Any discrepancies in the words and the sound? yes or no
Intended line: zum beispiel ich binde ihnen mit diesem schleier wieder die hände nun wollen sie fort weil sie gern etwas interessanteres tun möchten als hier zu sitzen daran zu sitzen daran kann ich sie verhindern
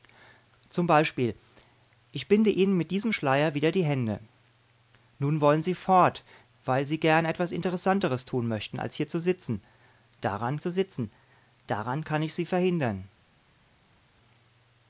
no